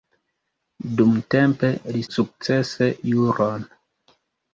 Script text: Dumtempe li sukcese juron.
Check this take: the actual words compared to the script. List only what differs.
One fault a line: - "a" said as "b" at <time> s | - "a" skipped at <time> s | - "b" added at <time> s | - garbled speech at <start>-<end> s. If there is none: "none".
none